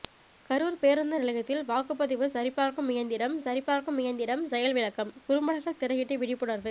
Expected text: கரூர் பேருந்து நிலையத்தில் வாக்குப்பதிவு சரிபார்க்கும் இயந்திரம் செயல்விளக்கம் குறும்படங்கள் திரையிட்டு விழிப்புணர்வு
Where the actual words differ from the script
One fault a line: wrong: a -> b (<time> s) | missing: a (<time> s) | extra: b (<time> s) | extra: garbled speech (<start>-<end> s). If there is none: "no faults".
extra: சரிபார்க்கும் இயந்திரம் (3.4 s)